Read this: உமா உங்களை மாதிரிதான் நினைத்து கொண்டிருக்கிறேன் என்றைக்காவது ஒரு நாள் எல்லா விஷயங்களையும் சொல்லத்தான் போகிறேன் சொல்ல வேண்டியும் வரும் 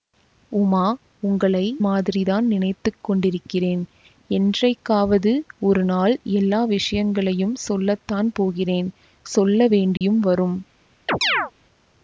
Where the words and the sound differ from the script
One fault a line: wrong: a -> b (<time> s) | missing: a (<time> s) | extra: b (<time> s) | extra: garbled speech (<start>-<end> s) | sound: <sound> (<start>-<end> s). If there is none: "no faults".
sound: dropout (10.0-10.0 s)
sound: chirp (11.1-11.5 s)